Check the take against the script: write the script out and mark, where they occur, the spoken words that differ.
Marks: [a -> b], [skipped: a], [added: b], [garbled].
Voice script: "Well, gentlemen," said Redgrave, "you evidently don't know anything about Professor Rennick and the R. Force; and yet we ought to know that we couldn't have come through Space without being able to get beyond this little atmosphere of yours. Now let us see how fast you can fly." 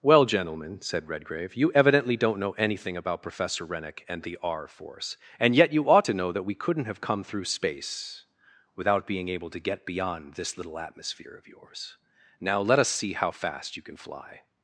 "Well, gentlemen," said Redgrave, "you evidently don't know anything about Professor Rennick and the R. Force; and yet [we -> you] ought to know that we couldn't have come through Space without being able to get beyond this little atmosphere of yours. Now let us see how fast you can fly."